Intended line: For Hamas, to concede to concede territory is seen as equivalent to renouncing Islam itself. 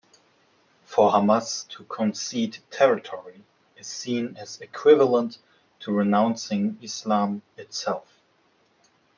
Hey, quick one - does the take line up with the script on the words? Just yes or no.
no